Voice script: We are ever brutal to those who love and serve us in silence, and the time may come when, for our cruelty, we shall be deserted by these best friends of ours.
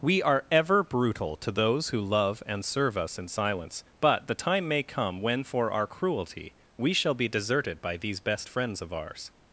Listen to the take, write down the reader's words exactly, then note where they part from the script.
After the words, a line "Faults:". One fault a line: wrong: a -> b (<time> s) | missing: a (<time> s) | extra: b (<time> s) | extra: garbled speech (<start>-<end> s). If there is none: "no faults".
We are ever brutal to those who love and serve us in silence, but the time may come when, for our cruelty, we shall be deserted by these best friends of ours.
Faults:
wrong: and -> but (4.0 s)